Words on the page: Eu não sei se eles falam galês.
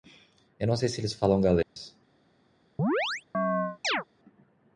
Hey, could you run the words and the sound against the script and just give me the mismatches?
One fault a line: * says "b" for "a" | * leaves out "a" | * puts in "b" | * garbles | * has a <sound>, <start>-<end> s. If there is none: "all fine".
* has a dropout, 1.6-1.8 s
* has a chirp, 2.8-4.0 s